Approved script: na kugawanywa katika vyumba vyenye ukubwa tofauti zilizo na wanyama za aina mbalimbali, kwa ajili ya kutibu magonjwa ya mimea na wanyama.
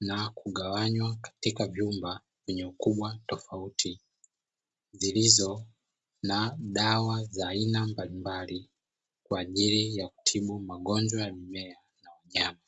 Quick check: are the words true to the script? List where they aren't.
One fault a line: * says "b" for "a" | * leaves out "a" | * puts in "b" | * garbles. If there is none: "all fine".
* says "dawa" for "wanyama"